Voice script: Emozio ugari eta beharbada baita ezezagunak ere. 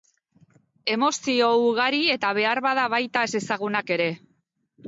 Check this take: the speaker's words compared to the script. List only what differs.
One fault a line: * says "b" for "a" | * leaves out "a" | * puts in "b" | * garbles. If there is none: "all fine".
all fine